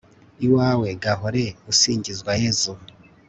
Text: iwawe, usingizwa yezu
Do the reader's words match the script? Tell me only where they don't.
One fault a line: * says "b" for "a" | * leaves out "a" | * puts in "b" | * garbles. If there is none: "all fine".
* puts in "gahore"